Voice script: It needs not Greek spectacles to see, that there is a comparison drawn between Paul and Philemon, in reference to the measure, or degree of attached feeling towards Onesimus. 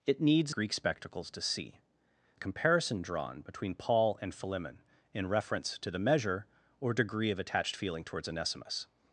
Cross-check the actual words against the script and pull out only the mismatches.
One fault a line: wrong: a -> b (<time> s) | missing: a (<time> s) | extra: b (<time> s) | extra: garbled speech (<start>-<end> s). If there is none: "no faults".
missing: not (0.6 s)
missing: that there is (1.8 s)